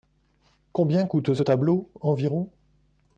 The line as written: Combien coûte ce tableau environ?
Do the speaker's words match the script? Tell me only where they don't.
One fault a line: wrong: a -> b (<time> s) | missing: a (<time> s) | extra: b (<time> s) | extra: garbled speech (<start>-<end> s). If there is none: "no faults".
no faults